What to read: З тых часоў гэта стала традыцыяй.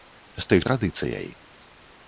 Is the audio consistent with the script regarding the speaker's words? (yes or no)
no